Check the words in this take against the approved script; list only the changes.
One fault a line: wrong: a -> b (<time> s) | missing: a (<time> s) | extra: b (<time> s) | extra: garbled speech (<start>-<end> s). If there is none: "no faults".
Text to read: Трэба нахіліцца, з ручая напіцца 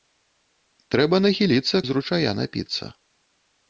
no faults